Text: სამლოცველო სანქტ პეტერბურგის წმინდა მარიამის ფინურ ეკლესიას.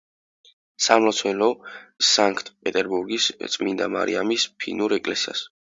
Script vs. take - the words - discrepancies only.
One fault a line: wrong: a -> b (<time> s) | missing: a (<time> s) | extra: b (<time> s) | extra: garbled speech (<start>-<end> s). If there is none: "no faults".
no faults